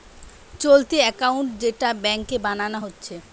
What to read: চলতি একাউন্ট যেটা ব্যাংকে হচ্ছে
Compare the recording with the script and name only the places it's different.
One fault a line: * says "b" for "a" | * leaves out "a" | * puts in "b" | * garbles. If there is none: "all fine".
* puts in "বানানা"